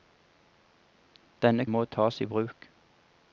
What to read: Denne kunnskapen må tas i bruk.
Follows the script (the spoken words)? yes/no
no